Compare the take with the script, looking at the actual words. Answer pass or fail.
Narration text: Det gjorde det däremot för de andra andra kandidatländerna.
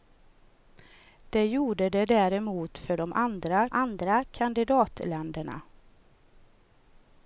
pass